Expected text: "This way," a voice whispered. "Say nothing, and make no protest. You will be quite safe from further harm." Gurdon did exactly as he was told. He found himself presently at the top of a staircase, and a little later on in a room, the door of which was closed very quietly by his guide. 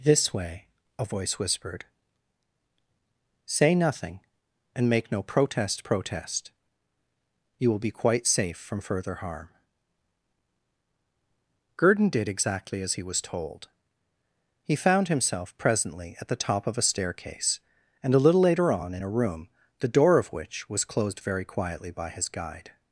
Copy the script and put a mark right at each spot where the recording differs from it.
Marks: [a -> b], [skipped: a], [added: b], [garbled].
"This way," a voice whispered. "Say nothing, and make no protest. [added: protest] You will be quite safe from further harm." Gurdon did exactly as he was told. He found himself presently at the top of a staircase, and a little later on in a room, the door of which was closed very quietly by his guide.